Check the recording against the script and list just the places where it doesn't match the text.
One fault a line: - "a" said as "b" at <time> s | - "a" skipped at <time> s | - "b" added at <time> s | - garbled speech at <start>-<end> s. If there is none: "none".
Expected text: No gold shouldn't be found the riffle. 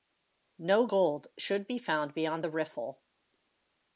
- "shouldn't" said as "should" at 1.4 s
- "beyond" added at 2.1 s